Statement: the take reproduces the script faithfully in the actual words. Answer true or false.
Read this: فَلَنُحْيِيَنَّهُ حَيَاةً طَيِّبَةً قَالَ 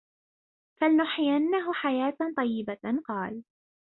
true